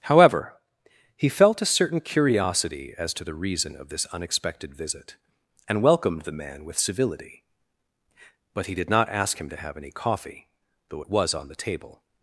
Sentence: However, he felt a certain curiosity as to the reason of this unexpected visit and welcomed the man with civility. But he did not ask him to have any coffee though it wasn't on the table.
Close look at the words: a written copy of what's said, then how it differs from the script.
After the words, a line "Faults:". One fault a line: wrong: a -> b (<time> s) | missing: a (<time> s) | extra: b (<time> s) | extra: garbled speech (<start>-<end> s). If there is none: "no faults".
However, he felt a certain curiosity as to the reason of this unexpected visit and welcomed the man with civility. But he did not ask him to have any coffee though it was on the table.
Faults:
wrong: wasn't -> was (11.1 s)